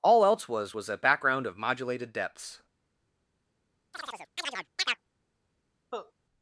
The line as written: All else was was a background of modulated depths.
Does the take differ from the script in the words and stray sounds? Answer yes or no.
yes